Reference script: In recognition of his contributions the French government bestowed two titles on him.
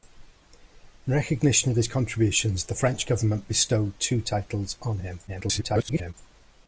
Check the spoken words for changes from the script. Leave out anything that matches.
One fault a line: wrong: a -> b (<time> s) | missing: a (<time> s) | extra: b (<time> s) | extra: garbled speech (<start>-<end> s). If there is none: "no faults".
extra: garbled speech (5.3-6.1 s)